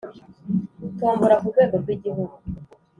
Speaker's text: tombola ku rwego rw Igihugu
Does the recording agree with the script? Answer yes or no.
yes